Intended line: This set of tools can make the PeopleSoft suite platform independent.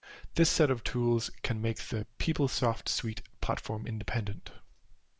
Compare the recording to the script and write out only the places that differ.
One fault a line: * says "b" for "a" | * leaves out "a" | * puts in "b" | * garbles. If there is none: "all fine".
all fine